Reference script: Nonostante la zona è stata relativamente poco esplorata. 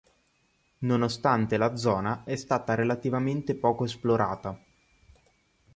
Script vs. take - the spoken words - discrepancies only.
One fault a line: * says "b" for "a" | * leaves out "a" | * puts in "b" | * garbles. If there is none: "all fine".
all fine